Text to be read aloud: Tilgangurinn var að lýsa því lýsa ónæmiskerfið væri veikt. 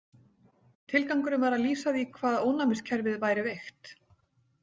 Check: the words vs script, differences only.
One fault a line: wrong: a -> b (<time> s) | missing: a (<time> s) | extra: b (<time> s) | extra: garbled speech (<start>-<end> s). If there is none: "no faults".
wrong: lýsa -> hvað (2.1 s)